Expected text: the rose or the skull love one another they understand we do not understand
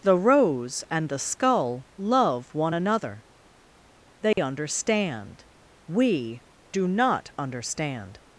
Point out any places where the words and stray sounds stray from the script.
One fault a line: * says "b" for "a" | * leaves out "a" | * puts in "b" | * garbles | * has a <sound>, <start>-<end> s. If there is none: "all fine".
* says "and" for "or"
* has a dropout, 4.3-4.4 s